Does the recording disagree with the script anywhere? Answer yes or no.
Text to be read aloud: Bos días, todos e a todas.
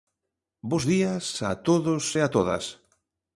yes